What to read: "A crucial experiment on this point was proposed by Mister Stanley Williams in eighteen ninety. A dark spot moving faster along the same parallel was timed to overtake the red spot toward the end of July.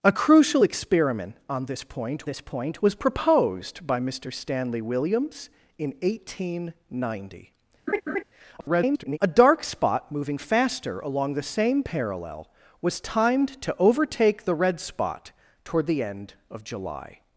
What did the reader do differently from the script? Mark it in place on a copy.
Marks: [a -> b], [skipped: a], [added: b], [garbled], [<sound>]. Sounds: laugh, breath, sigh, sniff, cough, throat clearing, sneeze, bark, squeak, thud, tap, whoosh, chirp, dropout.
"A crucial experiment on this point [added: this point] was proposed by Mister Stanley Williams in eighteen ninety. [laugh] [garbled] A dark spot moving faster along the same parallel was timed to overtake the red spot toward the end of July.